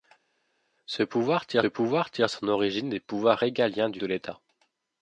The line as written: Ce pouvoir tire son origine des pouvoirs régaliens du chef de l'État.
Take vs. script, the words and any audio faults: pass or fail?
fail